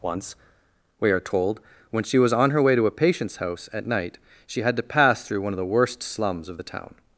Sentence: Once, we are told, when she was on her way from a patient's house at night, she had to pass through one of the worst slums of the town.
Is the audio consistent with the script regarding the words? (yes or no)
no